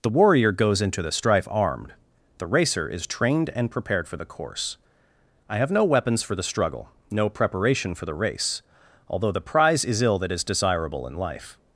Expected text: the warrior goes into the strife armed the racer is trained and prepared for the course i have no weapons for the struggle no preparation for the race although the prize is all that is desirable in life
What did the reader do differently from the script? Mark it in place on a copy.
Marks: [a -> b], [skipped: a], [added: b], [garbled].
the warrior goes into the strife armed the racer is trained and prepared for the course i have no weapons for the struggle no preparation for the race although the prize is [all -> ill] that is desirable in life